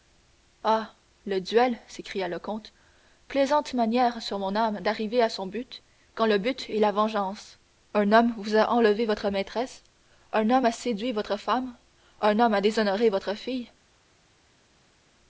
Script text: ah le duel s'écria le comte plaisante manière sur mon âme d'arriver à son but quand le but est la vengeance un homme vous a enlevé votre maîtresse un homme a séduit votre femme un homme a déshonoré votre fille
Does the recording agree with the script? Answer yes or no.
yes